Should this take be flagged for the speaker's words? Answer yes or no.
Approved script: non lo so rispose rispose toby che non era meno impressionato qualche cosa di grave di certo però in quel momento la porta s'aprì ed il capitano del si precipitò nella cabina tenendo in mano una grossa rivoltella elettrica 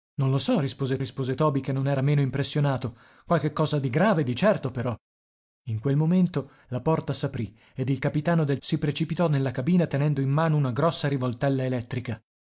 no